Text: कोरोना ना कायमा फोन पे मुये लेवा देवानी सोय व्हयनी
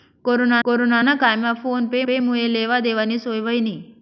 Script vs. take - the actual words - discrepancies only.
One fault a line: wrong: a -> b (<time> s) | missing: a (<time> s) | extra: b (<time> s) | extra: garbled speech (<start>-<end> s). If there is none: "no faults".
extra: कोरोना (0.6 s)
extra: पे (2.0 s)